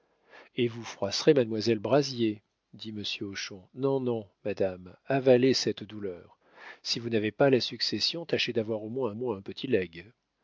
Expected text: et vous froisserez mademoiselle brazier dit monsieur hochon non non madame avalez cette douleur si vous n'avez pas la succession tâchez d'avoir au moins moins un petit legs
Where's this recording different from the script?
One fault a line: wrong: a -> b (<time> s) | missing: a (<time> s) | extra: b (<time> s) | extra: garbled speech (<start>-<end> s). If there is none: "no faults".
no faults